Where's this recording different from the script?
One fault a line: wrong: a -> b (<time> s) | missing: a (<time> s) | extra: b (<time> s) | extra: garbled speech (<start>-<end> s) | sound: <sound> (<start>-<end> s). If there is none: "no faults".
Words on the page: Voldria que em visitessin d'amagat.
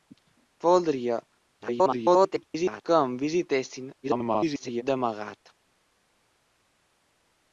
extra: garbled speech (1.6-2.8 s)
extra: garbled speech (4.0-4.8 s)